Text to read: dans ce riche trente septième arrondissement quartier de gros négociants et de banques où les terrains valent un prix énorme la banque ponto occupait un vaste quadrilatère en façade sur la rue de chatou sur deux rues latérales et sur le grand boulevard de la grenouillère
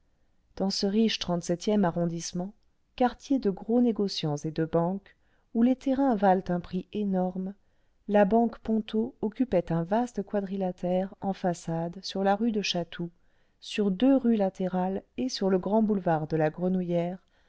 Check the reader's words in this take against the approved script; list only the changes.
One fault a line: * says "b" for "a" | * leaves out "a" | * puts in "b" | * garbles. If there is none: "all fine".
all fine